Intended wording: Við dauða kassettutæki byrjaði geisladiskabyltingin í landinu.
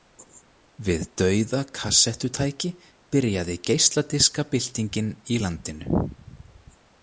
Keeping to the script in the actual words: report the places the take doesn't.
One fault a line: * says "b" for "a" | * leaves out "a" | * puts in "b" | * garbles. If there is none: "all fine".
all fine